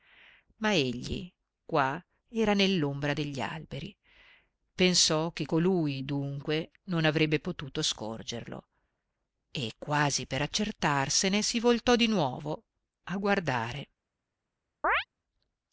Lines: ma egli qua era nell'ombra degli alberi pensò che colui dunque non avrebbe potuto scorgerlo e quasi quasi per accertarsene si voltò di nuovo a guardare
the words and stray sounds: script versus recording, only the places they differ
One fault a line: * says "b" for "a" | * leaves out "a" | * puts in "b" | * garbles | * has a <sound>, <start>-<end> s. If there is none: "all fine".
* leaves out "quasi"
* has a chirp, 14.8-15.1 s